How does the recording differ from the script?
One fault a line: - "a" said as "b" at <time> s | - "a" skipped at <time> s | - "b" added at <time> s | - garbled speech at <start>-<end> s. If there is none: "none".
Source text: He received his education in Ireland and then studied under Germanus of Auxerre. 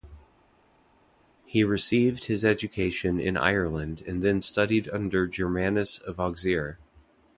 none